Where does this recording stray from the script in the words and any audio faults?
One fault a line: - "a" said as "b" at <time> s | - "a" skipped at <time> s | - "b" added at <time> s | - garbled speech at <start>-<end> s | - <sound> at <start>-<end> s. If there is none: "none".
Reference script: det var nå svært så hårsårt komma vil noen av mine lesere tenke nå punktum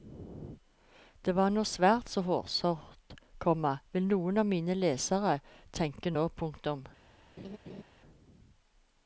- laugh at 7.4-7.8 s